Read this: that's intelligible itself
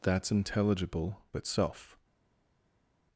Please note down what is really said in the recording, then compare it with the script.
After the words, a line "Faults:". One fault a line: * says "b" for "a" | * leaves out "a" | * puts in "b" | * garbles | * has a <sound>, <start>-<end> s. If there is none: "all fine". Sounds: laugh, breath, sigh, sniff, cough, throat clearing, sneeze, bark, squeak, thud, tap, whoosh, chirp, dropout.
that's intelligible itself
Faults:
all fine